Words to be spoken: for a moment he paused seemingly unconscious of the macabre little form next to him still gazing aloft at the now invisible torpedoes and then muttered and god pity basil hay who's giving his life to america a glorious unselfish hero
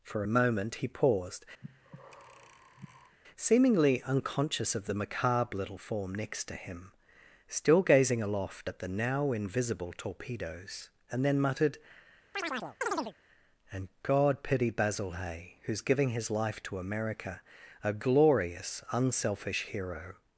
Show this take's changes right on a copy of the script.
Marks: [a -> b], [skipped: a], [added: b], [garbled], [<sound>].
for a moment he paused [breath] seemingly unconscious of the macabre little form next to him still gazing aloft at the now invisible torpedoes and then muttered [chirp] and god pity basil hay who's giving his life to america a glorious unselfish hero